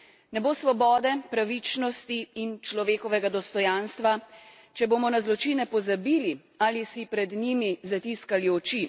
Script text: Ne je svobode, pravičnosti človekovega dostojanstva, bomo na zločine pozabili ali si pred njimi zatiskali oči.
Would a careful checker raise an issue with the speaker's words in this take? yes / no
yes